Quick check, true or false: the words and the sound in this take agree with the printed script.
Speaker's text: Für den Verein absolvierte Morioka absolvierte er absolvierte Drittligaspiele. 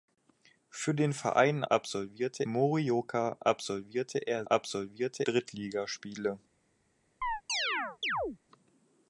false